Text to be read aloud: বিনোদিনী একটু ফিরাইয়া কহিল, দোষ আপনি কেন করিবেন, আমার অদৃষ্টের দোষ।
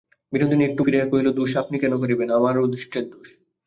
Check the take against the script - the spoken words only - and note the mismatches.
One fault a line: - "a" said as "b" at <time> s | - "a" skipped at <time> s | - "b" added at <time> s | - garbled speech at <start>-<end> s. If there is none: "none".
none